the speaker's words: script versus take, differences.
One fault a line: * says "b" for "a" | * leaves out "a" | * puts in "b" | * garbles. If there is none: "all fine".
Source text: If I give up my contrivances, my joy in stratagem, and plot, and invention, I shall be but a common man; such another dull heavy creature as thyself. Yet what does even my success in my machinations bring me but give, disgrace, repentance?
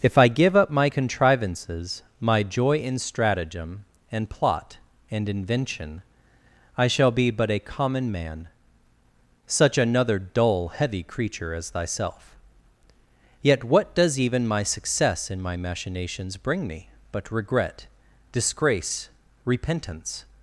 * says "regret" for "give"